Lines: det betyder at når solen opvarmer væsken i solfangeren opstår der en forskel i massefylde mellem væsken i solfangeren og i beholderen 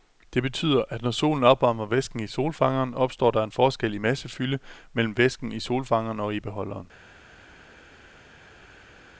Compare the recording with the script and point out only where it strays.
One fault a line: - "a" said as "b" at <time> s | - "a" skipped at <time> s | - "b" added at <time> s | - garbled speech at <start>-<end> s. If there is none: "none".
none